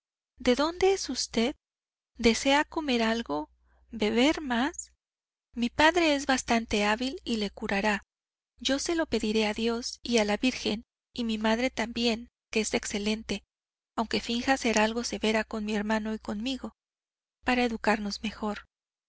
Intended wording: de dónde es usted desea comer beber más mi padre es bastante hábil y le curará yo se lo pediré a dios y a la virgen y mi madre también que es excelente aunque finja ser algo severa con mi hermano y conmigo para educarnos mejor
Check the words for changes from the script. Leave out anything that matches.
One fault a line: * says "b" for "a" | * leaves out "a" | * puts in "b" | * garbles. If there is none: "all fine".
* puts in "algo"